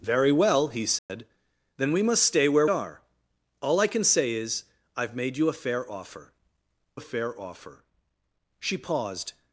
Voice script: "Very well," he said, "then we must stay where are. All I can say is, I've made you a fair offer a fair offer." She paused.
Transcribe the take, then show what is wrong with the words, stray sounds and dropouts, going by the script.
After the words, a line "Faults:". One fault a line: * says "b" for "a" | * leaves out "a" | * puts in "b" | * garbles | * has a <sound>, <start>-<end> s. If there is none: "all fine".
"Very well," he said, "then we must stay where are. All I can say is, I've made you a fair offer a fair offer." She paused.
Faults:
* has a dropout, 1.0-1.1 s